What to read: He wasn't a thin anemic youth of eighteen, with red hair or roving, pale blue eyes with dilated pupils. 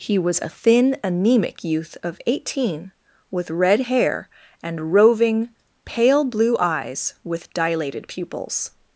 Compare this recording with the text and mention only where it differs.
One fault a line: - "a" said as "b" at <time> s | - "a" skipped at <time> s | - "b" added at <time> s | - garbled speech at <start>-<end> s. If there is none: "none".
- "wasn't" said as "was" at 0.2 s
- "or" said as "and" at 4.6 s